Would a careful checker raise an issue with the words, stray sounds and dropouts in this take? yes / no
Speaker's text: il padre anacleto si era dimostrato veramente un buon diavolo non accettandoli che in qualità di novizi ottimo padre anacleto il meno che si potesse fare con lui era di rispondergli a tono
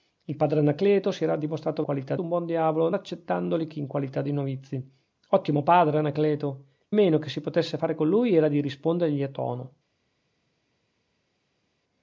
yes